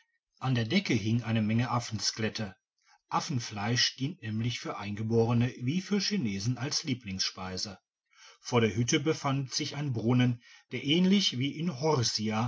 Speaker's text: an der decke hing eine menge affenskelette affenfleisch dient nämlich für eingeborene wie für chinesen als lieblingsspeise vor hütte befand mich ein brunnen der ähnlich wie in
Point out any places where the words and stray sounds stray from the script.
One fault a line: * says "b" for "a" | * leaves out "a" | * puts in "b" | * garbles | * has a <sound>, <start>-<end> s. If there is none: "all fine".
* puts in "der"
* says "sich" for "mich"